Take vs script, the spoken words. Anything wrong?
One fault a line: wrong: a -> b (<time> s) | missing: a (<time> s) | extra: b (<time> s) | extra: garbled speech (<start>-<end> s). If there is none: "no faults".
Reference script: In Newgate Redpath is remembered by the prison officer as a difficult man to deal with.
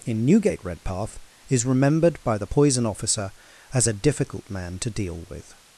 wrong: prison -> poison (2.4 s)